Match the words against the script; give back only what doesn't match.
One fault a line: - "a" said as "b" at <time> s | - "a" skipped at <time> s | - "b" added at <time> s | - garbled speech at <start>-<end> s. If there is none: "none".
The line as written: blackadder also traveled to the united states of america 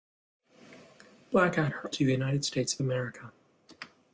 - "also traveled" skipped at 1.9 s